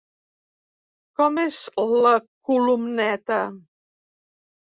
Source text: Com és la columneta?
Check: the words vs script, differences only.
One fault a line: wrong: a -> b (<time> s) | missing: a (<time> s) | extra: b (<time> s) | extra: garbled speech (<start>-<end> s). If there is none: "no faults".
no faults